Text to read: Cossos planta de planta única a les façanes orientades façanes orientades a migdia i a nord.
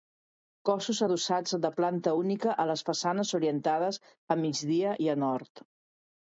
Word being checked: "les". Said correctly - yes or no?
yes